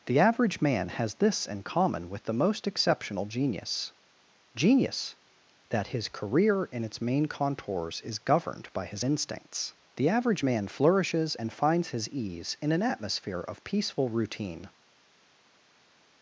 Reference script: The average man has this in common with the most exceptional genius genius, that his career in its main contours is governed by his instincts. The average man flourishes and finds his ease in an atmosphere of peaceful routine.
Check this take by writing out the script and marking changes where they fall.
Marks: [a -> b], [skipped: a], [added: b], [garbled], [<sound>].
The average man has this in common with the most exceptional genius genius, that his career in its main contours is governed by his instincts. The average man flourishes and finds his ease in an atmosphere of peaceful routine.